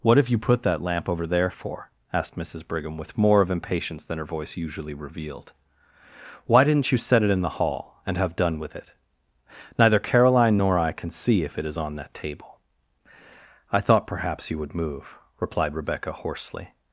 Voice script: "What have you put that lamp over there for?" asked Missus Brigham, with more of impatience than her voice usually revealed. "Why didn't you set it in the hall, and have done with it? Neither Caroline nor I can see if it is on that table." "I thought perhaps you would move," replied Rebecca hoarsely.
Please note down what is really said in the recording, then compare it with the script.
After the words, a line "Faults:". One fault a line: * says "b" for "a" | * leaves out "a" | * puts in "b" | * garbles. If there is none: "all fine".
"What have you put that lamp over there for?" asked Missus Brigham, with more of impatience than her voice usually revealed. "Why didn't you set it in the hall, and have done with it? Neither Caroline nor I can see if it is on that table." "I thought perhaps you would move," replied Rebecca hoarsely.
Faults:
all fine